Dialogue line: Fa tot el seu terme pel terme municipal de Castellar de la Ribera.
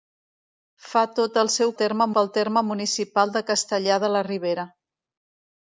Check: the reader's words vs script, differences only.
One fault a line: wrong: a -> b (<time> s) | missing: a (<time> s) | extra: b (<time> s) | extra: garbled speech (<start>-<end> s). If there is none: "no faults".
no faults